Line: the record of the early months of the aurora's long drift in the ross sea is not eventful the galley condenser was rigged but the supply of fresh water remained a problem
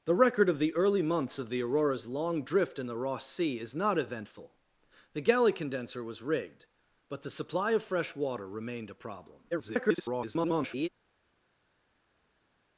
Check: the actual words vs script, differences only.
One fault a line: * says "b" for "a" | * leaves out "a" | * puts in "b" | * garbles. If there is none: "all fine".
* garbles